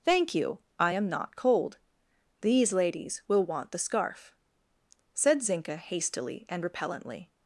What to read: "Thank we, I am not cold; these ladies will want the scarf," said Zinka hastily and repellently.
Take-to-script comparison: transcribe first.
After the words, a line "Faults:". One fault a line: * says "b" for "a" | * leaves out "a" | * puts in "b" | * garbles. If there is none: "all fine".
"Thank you, I am not cold; these ladies will want the scarf," said Zinka hastily and repellently.
Faults:
* says "you" for "we"